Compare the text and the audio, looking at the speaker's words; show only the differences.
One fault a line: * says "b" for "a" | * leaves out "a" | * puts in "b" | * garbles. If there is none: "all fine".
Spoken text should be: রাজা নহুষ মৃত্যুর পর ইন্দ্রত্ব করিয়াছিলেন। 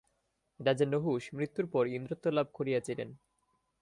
* puts in "লাভ"